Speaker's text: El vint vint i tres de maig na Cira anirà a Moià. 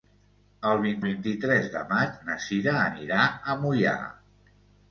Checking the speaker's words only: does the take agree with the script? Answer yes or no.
yes